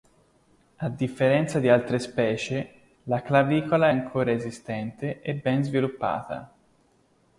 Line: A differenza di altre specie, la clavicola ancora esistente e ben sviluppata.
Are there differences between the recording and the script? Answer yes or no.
no